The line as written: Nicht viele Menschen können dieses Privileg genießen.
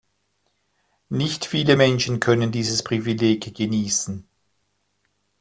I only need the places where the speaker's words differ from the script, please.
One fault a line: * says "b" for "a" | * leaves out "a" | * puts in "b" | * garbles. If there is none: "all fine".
all fine